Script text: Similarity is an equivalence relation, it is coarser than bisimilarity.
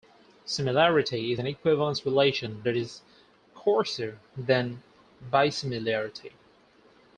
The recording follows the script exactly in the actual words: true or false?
true